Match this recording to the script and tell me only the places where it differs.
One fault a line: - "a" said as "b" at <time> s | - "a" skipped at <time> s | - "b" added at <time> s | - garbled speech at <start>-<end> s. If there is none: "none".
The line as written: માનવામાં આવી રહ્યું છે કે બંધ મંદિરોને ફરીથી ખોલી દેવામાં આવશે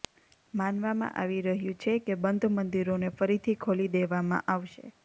none